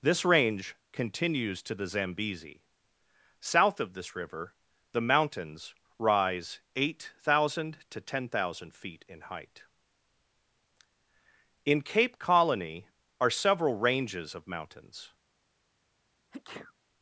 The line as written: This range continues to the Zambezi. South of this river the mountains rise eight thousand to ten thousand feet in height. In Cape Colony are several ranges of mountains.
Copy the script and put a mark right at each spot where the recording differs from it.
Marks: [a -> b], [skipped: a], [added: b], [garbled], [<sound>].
This range continues to the Zambezi. South of this river the mountains rise eight thousand to ten thousand feet in height. In Cape Colony are several ranges of mountains. [sneeze]